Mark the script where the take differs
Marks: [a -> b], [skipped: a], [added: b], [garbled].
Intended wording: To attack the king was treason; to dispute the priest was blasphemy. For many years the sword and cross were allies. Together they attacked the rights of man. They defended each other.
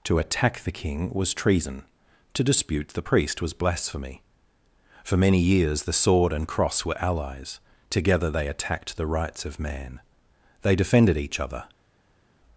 To attack the king was treason; to dispute the priest was blasphemy. For many years the sword and cross were allies. Together they attacked the rights of man. They defended each other.